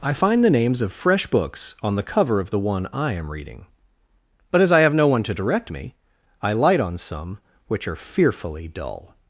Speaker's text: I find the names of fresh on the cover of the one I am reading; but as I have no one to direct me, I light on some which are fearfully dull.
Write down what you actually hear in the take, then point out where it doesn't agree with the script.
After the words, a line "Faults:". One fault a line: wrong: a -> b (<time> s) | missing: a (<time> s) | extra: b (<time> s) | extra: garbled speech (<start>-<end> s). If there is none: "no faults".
I find the names of fresh books on the cover of the one I am reading; but as I have no one to direct me, I light on some which are fearfully dull.
Faults:
extra: books (1.2 s)